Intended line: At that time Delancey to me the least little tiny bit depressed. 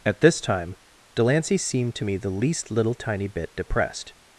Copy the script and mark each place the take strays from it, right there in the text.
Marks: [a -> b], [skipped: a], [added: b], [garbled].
At [that -> this] time Delancey [added: seemed] to me the least little tiny bit depressed.